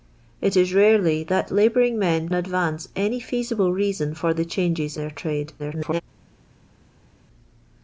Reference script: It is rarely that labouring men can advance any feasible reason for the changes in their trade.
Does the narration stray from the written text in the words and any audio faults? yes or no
yes